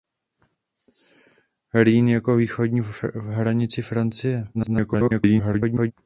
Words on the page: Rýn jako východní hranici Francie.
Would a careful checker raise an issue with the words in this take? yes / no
yes